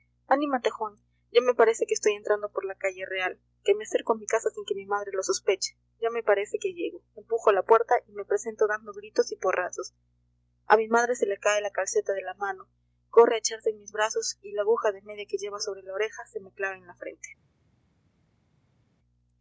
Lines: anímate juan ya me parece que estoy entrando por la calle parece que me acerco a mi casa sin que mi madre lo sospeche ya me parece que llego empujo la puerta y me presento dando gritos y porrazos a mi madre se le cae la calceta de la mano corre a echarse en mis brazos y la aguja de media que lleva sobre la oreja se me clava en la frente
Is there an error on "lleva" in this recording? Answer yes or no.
no